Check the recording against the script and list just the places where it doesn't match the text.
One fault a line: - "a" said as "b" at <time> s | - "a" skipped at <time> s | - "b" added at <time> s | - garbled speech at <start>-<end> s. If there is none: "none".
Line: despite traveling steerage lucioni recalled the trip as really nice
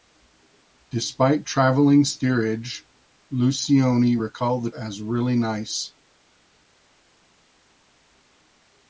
- "trip" skipped at 4.7 s